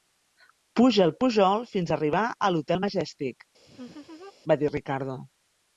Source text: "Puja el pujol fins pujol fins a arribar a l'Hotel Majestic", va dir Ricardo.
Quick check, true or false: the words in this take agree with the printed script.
false